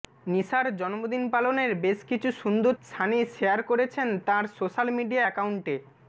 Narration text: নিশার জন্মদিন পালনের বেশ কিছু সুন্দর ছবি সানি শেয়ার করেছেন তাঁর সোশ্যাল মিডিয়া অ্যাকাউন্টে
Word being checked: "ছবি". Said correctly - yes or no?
no